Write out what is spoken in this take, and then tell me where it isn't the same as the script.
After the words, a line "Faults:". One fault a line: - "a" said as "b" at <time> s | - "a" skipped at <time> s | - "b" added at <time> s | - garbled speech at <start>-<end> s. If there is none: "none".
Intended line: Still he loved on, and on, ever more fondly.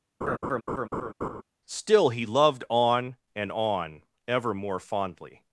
Still he loved on, and on, ever more fondly.
Faults:
none